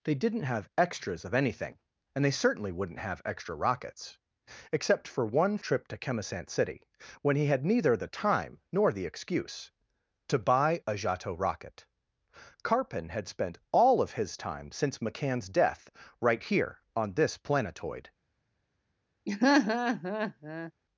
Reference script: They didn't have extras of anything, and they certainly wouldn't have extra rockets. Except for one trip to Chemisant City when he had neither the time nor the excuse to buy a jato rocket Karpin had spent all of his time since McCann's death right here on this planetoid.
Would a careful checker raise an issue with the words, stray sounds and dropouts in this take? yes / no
yes